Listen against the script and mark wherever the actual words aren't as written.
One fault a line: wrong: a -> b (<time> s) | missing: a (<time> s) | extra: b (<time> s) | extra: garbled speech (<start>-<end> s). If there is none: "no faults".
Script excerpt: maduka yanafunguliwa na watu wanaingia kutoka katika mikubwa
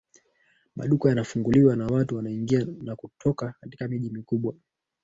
extra: na (2.8 s)
extra: miji (3.9 s)